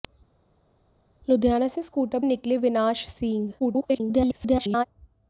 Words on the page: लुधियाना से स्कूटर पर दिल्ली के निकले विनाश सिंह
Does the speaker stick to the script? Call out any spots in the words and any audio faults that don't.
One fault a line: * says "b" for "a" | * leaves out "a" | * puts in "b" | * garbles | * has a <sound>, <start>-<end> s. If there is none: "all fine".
* leaves out "पर दिल्ली के"
* garbles